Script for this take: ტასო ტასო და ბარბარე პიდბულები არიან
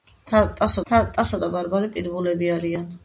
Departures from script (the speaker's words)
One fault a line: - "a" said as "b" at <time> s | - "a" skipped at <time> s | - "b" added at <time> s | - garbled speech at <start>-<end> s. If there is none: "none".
none